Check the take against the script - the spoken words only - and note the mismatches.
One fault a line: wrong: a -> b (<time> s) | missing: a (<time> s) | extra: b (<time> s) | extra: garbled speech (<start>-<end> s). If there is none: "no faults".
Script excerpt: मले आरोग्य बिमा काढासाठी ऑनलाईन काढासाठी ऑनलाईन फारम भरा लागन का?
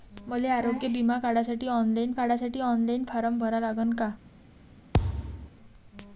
no faults